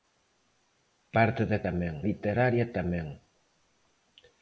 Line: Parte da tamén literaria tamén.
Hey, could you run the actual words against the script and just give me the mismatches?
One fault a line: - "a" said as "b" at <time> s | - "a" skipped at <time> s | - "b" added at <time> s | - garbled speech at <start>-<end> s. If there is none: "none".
none